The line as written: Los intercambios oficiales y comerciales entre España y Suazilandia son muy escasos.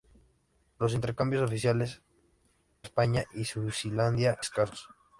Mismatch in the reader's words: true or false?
true